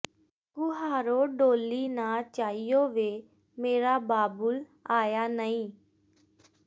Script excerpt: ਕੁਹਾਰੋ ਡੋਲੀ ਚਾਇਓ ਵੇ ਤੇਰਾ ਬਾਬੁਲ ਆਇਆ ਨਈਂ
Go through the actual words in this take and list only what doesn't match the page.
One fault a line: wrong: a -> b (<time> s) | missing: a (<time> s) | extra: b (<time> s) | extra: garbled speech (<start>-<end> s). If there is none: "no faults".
extra: ਨਾ (1.9 s)
wrong: ਤੇਰਾ -> ਮੇਰਾ (3.6 s)